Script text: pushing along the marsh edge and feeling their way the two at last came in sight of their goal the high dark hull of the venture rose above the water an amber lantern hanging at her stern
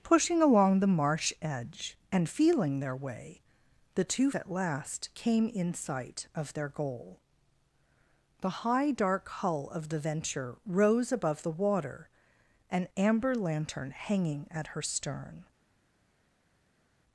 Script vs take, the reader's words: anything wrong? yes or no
no